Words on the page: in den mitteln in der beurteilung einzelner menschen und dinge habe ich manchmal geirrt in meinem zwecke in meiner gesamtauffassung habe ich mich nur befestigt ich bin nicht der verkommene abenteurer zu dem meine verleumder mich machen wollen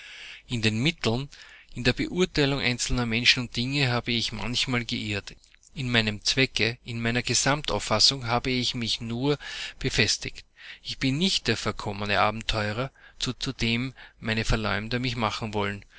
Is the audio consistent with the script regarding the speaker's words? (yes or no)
no